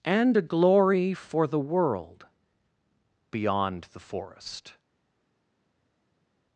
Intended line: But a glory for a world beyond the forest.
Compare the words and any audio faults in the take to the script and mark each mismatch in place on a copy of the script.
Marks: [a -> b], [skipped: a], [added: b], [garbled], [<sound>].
[But -> And] a glory for [a -> the] world beyond the forest.